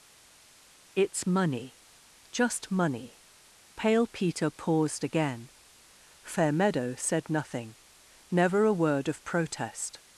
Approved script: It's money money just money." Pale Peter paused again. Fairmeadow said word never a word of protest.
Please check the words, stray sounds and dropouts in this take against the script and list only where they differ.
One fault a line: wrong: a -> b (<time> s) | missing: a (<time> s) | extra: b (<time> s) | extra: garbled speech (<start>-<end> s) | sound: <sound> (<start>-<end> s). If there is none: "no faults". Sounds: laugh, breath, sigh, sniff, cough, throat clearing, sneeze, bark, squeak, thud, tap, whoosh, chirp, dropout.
missing: money (1.8 s)
wrong: word -> nothing (7.3 s)